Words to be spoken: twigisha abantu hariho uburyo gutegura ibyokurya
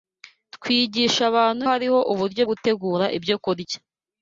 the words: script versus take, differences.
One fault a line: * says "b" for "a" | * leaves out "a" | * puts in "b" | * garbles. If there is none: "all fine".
all fine